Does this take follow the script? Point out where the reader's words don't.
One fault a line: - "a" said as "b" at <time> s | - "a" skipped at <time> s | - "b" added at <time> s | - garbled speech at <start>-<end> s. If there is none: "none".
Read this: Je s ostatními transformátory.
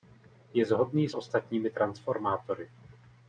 - "shodný" added at 0.7 s